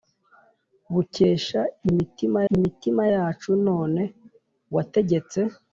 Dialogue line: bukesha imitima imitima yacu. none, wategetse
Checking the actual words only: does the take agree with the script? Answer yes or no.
yes